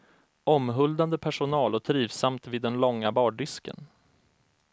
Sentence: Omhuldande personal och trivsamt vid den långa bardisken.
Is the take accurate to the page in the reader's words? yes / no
yes